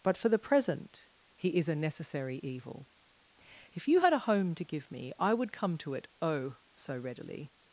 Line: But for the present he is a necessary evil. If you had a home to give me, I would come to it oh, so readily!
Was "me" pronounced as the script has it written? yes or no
yes